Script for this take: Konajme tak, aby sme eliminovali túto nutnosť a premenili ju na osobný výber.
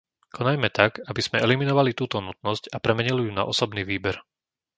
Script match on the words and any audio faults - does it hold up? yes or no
yes